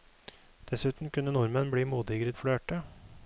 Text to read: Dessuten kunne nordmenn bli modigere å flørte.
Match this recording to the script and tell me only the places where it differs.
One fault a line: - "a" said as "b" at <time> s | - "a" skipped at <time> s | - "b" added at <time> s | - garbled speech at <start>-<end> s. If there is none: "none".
none